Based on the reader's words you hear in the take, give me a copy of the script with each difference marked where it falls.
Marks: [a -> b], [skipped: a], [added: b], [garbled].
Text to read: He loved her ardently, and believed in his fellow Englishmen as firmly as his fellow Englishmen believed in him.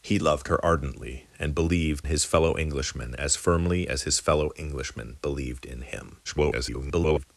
He loved her ardently, and believed [skipped: in] his fellow Englishmen as firmly as his fellow Englishmen believed in him. [garbled]